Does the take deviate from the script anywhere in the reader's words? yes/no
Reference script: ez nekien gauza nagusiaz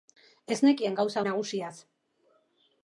no